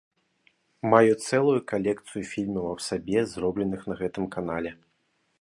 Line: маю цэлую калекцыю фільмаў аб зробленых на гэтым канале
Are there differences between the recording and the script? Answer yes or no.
yes